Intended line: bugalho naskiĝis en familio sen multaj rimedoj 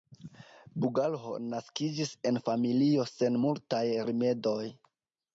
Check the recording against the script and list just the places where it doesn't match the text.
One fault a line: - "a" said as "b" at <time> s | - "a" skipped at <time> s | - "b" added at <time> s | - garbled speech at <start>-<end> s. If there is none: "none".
none